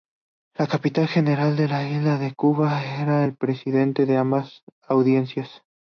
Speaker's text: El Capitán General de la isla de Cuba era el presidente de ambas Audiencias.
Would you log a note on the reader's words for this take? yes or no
no